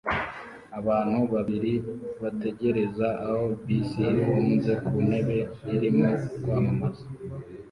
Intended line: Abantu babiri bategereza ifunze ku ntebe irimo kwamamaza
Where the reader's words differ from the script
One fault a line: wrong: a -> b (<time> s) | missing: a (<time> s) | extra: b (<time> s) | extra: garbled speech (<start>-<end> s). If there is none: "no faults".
extra: aho bisi (3.2 s)